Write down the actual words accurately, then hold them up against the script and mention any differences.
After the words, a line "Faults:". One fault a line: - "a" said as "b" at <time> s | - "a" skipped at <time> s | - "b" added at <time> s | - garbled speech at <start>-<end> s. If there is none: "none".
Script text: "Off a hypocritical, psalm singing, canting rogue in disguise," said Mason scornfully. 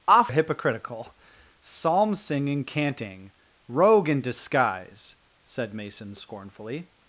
"Off a hypocritical, psalm singing, canting rogue in disguise," said Mason scornfully.
Faults:
none